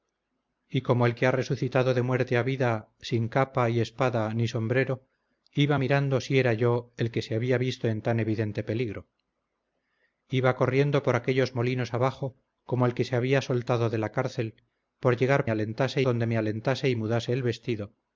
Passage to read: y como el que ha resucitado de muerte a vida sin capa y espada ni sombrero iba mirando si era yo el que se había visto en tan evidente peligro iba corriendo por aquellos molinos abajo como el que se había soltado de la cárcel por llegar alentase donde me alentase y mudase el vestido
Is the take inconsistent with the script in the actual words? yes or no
no